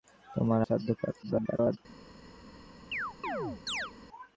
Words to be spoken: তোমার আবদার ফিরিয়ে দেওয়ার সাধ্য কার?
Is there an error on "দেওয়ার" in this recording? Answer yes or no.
yes